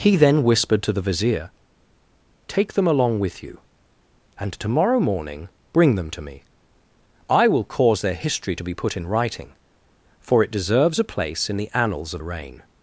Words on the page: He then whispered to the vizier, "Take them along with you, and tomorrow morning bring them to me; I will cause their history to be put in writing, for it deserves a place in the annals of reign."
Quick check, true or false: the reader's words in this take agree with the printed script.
true